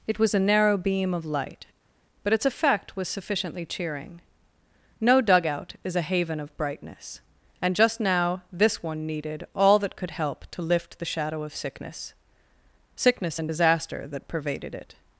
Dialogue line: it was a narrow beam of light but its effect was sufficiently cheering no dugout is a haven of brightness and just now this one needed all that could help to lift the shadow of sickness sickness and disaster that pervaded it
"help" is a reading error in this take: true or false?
false